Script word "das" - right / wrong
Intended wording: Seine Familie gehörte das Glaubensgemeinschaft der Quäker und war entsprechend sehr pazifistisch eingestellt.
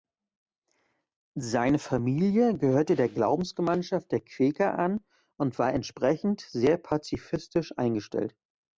wrong